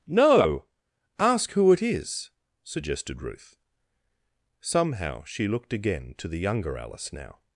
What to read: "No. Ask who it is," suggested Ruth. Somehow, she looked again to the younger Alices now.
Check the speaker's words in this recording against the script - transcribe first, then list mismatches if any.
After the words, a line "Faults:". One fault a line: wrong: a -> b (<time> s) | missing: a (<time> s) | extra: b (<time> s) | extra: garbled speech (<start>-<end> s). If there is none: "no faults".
"No. Ask who it is," suggested Ruth. Somehow, she looked again to the younger Alice now.
Faults:
wrong: Alices -> Alice (6.8 s)